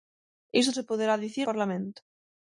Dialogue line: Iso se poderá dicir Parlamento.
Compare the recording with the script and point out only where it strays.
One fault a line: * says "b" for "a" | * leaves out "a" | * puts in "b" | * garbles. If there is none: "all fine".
all fine